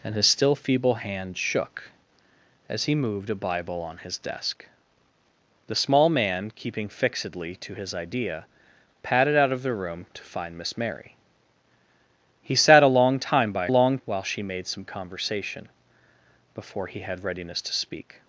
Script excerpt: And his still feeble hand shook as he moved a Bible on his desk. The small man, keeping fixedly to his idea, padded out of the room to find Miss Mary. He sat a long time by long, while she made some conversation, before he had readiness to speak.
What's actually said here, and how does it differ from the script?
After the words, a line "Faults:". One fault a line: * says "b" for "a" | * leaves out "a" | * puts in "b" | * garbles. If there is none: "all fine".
And his still feeble hand shook as he moved a Bible on his desk. The small man, keeping fixedly to his idea, padded out of the room to find Miss Mary. He sat a long time by long, while she made some conversation, before he had readiness to speak.
Faults:
all fine